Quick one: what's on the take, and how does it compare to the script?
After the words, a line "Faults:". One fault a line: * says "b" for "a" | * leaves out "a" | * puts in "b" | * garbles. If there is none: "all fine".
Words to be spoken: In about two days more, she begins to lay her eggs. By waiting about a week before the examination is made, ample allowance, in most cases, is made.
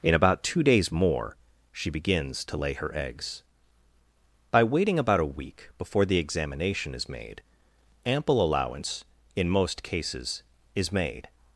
In about two days more, she begins to lay her eggs. By waiting about a week before the examination is made, ample allowance, in most cases, is made.
Faults:
all fine